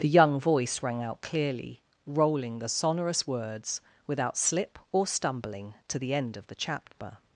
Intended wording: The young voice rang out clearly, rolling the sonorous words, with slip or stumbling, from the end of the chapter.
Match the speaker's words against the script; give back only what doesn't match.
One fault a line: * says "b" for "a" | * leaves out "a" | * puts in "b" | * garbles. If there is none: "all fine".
* says "without" for "with"
* says "to" for "from"